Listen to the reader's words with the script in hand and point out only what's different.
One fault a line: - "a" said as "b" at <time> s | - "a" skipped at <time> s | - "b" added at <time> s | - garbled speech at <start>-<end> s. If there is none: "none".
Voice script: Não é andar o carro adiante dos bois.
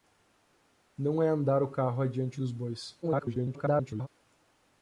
- garbled speech at 3.0-4.1 s